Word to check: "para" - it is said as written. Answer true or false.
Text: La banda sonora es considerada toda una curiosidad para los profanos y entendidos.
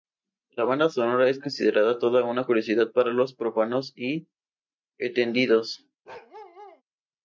true